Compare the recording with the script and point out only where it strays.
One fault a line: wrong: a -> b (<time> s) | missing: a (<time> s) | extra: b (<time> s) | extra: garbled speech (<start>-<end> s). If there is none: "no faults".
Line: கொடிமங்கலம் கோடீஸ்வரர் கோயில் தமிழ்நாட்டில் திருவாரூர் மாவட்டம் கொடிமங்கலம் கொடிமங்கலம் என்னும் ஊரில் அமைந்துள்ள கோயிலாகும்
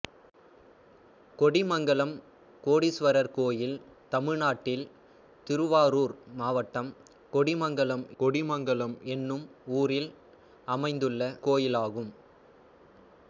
no faults